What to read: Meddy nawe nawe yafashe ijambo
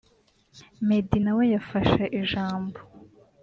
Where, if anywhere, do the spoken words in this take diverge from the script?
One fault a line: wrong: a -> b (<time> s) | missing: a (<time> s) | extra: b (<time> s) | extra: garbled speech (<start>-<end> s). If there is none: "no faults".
missing: nawe (1.4 s)